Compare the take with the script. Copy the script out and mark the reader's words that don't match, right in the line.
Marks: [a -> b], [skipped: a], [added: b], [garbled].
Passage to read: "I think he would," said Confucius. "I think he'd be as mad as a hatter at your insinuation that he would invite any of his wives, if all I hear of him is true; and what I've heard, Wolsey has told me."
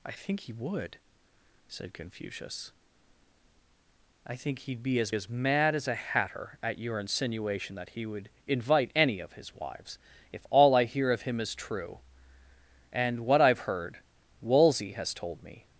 "I think he would," said Confucius. "I think he'd be as [added: as] mad as a hatter at your insinuation that he would invite any of his wives, if all I hear of him is true; and what I've heard, Wolsey has told me."